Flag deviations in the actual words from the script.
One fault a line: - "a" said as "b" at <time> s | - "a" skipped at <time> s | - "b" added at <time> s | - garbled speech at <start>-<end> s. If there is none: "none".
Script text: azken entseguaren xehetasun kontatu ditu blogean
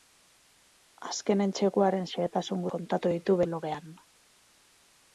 none